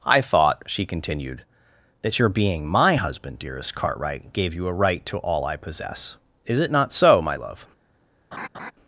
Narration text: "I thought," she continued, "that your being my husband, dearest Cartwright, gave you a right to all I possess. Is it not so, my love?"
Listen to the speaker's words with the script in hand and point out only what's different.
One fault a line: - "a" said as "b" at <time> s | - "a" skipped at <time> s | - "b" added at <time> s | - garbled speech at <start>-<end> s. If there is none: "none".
none